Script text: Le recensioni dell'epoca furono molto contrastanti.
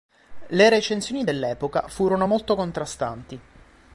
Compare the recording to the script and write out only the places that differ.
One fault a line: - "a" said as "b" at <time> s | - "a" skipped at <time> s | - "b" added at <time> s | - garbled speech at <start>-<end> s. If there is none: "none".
none